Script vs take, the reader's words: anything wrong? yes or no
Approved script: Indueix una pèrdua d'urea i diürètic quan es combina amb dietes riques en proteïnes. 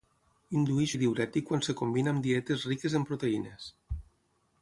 yes